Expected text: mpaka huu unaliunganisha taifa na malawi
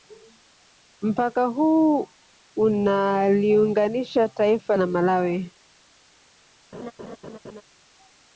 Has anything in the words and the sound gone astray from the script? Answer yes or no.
yes